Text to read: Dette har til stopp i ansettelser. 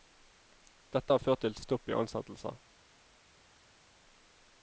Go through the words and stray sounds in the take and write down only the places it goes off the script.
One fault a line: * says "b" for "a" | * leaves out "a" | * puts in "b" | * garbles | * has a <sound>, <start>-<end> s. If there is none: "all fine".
* puts in "ført"